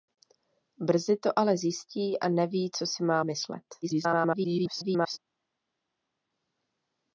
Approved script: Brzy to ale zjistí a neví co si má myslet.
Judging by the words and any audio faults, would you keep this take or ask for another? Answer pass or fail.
fail